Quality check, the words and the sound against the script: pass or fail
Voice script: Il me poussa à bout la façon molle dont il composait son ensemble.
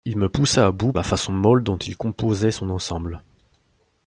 pass